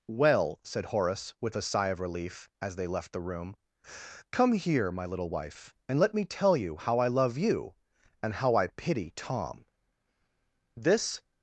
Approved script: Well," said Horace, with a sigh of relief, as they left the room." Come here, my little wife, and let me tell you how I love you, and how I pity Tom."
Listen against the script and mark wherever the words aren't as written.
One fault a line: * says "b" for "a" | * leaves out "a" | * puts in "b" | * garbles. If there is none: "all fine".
* puts in "This"